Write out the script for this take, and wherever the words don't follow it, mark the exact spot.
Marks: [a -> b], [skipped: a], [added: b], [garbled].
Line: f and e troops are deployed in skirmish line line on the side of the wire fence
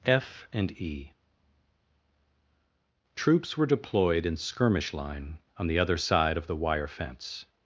f and e troops [are -> were] deployed in skirmish line [skipped: line] on the [added: other] side of the wire fence